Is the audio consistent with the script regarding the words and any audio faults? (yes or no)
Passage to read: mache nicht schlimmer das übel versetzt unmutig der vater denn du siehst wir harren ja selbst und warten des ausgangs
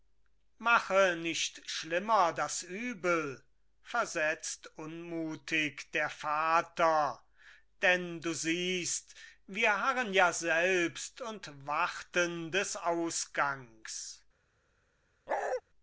no